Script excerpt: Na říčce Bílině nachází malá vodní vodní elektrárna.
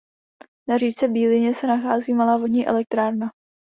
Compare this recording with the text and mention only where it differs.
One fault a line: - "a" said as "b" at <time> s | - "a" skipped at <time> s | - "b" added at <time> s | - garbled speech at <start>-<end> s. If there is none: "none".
- "se" added at 1.5 s
- "vodní" skipped at 2.7 s